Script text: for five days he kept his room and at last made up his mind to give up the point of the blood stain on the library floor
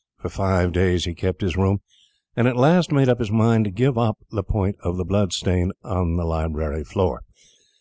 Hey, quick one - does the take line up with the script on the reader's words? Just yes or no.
yes